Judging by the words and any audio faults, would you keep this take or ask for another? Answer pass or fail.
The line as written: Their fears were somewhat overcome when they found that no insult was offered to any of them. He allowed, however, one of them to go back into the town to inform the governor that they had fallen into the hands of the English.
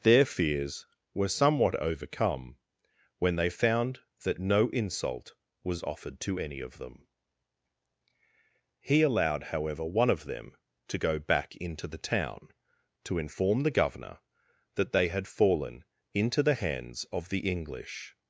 pass